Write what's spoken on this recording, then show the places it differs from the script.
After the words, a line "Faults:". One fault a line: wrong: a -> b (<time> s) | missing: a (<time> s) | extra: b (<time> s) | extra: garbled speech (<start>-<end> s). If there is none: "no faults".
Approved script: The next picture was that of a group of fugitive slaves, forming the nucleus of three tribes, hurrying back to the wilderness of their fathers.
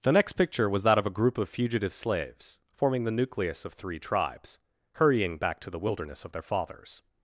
The next picture was that of a group of fugitive slaves, forming the nucleus of three tribes, hurrying back to the wilderness of their fathers.
Faults:
no faults